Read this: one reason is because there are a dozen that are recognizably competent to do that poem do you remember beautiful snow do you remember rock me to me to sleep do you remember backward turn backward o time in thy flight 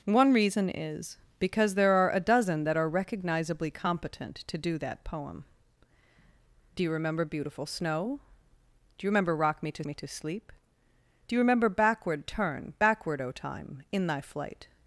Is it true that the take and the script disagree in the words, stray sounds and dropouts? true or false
false